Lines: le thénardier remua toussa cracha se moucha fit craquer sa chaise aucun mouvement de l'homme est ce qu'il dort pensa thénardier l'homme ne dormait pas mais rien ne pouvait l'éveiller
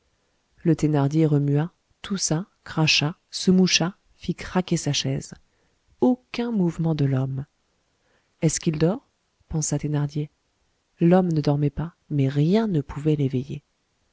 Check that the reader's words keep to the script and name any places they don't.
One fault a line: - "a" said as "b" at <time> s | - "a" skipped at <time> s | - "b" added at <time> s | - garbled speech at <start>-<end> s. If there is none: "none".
none